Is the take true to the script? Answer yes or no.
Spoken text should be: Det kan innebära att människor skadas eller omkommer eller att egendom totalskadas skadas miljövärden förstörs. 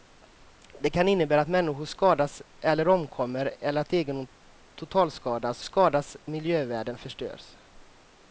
yes